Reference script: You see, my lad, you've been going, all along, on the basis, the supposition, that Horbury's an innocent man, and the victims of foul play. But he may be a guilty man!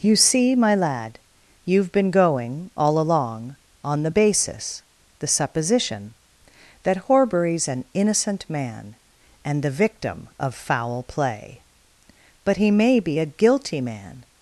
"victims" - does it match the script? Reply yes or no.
no